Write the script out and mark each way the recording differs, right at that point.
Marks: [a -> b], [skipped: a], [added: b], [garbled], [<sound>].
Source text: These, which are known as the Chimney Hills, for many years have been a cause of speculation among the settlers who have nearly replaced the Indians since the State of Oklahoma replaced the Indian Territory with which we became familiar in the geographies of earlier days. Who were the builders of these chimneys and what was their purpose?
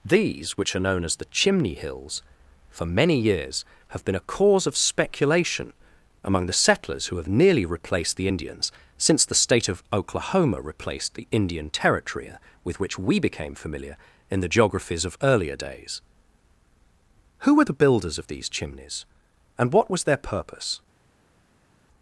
These, which are known as the Chimney Hills, for many years have been a cause of speculation among the settlers who have nearly replaced the Indians since the State of Oklahoma replaced the Indian Territory with which we became familiar in the geographies of earlier days. Who were the builders of these chimneys and what was their purpose?